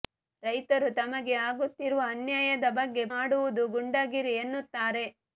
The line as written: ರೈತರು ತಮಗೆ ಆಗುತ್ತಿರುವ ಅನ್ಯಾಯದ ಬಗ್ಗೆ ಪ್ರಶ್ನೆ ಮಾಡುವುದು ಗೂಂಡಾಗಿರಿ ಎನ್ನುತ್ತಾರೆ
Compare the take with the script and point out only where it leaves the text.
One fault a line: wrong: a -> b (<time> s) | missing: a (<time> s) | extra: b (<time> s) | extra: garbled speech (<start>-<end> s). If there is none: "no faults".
missing: ಪ್ರಶ್ನೆ (3.0 s)